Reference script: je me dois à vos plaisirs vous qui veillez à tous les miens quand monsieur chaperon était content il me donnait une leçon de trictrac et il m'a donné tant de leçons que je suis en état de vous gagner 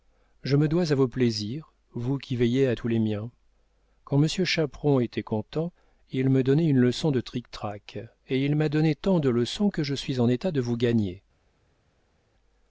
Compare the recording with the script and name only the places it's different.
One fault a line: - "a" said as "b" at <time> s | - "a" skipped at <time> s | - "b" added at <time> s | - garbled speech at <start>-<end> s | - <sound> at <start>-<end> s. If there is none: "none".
none